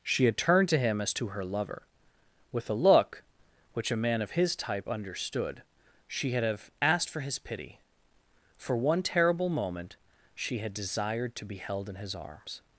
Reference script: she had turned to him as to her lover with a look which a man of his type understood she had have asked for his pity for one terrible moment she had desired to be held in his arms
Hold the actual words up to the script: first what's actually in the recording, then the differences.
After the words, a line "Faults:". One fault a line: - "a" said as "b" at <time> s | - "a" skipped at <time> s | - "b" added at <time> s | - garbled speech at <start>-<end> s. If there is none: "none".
she had turned to him as to her lover with a look which a man of his type understood she had have asked for his pity for one terrible moment she had desired to be held in his arms
Faults:
none